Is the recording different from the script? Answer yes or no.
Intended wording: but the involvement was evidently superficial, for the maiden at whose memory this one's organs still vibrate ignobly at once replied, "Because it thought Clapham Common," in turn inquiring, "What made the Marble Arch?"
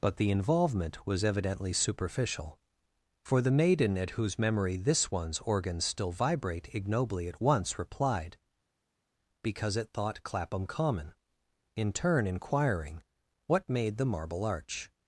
no